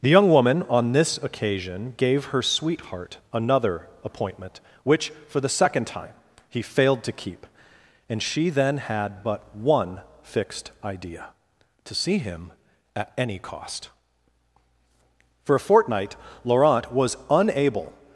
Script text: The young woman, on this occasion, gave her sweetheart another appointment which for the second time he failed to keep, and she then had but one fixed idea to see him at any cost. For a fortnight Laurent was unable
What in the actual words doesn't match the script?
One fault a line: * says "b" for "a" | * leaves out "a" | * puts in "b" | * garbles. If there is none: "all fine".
all fine